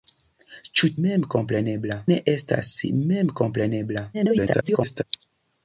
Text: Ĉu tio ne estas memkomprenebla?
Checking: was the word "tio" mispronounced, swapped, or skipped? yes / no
yes